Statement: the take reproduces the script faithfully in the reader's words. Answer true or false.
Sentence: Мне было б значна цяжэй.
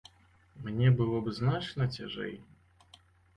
true